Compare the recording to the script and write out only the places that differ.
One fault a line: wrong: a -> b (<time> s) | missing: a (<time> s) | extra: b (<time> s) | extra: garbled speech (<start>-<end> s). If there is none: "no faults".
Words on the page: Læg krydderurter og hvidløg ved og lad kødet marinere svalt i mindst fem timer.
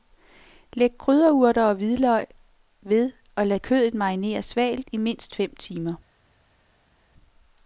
no faults